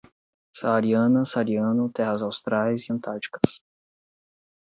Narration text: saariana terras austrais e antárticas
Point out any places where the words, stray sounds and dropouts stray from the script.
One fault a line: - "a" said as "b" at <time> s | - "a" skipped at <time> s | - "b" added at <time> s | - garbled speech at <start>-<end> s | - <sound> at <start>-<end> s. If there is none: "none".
- "saariano" added at 1.3 s